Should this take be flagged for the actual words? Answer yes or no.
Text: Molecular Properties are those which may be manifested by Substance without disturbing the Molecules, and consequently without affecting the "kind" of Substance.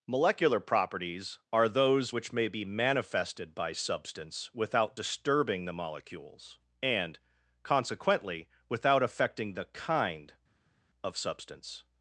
no